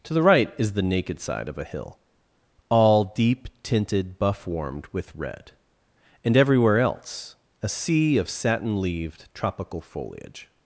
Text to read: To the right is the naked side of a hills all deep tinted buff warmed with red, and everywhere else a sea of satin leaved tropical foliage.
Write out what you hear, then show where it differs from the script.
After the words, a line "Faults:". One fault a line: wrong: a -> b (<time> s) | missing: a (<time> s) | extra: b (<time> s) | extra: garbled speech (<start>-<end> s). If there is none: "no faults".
To the right is the naked side of a hill all deep tinted buff warmed with red, and everywhere else a sea of satin leaved tropical foliage.
Faults:
wrong: hills -> hill (1.6 s)